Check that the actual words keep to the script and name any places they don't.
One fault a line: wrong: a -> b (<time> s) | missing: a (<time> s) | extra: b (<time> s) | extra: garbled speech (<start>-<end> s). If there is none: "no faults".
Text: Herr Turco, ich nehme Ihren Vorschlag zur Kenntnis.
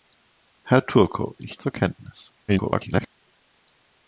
missing: nehme Ihren Vorschlag (1.6 s)
extra: garbled speech (2.5-3.1 s)